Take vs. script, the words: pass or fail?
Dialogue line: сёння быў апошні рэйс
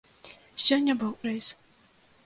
fail